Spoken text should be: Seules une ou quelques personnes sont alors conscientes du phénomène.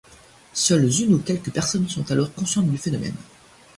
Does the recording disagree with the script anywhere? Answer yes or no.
no